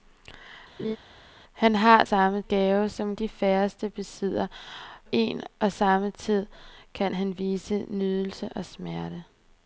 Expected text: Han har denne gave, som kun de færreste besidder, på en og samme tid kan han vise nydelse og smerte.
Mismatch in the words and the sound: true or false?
true